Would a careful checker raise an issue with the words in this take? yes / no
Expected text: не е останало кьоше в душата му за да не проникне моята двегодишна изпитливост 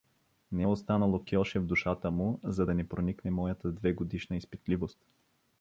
no